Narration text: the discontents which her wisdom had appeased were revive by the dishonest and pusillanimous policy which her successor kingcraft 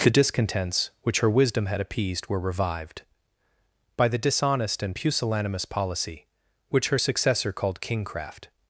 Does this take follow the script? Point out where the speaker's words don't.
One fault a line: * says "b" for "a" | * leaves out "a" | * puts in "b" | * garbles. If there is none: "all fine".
* says "revived" for "revive"
* puts in "called"